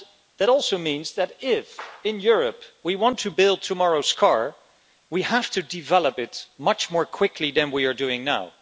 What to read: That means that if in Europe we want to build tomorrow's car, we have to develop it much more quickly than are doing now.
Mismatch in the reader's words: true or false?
true